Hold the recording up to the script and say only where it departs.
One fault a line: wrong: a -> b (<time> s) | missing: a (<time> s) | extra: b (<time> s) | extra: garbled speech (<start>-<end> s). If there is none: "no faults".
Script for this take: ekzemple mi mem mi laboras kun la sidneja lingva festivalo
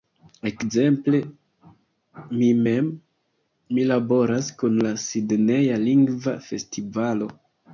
no faults